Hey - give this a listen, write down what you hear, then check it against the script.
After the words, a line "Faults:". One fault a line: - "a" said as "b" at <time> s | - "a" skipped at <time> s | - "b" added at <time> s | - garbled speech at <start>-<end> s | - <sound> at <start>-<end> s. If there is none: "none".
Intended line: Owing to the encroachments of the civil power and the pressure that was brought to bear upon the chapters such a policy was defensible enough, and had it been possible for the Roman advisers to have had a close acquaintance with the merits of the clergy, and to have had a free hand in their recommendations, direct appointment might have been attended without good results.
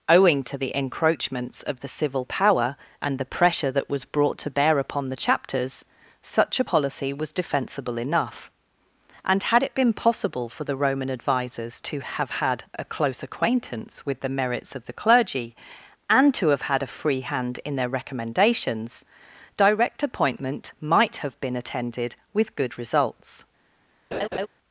Owing to the encroachments of the civil power and the pressure that was brought to bear upon the chapters such a policy was defensible enough, and had it been possible for the Roman advisers to have had a close acquaintance with the merits of the clergy, and to have had a free hand in their recommendations, direct appointment might have been attended with good results.
Faults:
- "without" said as "with" at 22.3 s
- laugh at 24.1-24.5 s